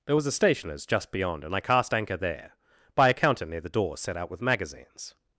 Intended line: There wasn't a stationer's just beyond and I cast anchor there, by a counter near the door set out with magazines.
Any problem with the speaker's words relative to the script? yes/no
yes